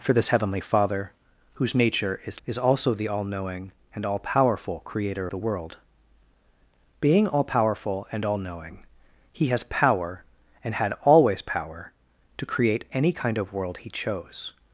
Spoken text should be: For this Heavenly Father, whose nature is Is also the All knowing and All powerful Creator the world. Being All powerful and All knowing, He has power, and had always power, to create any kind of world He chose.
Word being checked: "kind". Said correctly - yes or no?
yes